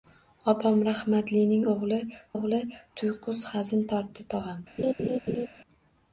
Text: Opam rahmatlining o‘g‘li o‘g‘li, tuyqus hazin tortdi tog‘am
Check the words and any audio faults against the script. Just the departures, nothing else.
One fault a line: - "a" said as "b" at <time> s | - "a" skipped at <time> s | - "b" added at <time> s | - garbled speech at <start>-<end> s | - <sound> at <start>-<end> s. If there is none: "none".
- laugh at 4.8-5.5 s